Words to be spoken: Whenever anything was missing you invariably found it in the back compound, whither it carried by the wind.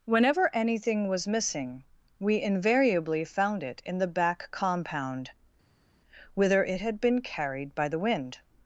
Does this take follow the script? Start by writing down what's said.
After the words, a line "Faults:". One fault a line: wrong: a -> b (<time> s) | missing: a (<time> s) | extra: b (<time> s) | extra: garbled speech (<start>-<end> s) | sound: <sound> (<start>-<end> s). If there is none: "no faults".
Whenever anything was missing we invariably found it in the back compound, whither it had been carried by the wind.
Faults:
wrong: you -> we (2.2 s)
extra: had been (6.8 s)